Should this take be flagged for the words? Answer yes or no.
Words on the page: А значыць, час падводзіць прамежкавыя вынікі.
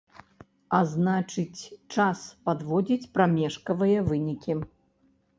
no